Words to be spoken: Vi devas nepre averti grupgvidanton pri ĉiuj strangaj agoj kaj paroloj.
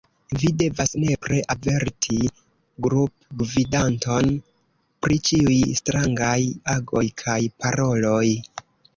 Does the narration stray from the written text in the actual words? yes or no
no